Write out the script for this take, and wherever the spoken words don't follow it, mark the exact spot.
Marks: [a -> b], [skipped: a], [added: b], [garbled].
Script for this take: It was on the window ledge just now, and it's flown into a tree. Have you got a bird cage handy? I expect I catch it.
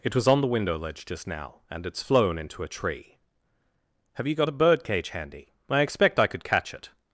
It was on the window ledge just now, and it's flown into a tree. Have you got a bird cage handy? I expect I [added: could] catch it.